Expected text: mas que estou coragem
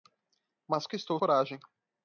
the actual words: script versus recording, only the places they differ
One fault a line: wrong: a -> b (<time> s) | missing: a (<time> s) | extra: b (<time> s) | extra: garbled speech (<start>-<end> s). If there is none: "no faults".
no faults